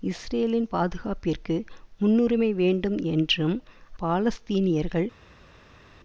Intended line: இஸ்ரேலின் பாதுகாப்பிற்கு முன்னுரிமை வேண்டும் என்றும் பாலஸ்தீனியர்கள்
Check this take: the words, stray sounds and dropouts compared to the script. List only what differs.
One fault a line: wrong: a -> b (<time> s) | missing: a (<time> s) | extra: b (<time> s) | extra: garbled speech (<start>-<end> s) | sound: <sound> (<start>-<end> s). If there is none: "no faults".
no faults